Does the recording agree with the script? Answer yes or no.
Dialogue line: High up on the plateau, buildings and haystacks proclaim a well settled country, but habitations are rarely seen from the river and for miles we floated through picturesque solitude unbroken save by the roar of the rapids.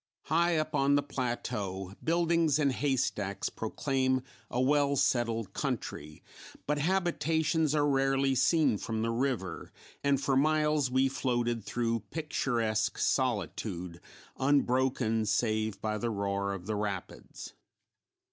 yes